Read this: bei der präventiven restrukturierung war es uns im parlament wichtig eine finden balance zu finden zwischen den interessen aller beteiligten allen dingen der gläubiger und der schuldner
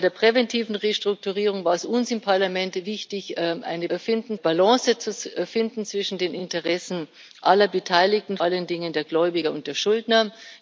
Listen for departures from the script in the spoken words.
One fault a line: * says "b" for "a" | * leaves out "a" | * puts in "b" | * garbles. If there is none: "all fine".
all fine